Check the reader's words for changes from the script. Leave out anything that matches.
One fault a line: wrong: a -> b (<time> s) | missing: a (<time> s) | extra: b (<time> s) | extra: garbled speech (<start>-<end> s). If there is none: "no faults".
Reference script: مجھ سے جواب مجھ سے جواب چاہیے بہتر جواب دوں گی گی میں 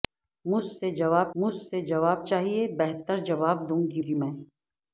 no faults